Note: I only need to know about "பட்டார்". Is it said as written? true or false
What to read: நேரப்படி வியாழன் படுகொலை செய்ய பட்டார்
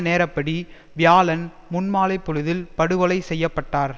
true